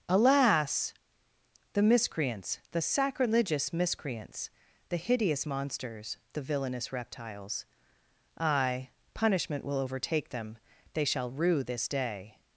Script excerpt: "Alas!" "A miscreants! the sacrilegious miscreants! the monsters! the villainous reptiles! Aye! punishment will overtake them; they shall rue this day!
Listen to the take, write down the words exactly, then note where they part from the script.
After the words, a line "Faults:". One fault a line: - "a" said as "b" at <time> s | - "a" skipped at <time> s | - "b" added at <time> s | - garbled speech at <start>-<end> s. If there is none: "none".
"Alas!" "The miscreants! the sacrilegious miscreants! the hideous monsters! the villainous reptiles! Aye! punishment will overtake them; they shall rue this day!
Faults:
- "A" said as "The" at 1.7 s
- "hideous" added at 5.0 s